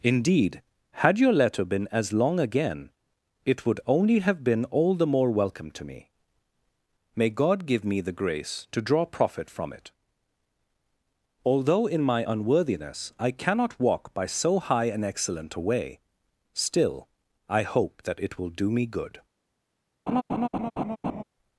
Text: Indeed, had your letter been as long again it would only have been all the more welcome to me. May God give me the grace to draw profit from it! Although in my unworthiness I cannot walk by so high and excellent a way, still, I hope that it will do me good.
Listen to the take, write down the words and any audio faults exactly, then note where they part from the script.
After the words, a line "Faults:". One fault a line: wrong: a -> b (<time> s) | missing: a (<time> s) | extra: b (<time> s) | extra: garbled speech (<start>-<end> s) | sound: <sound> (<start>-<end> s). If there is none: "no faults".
Indeed, had your letter been as long again it would only have been all the more welcome to me. May God give me the grace to draw profit from it! Although in my unworthiness I cannot walk by so high and excellent a way, still, I hope that it will do me good.
Faults:
sound: laugh (20.1-21.2 s)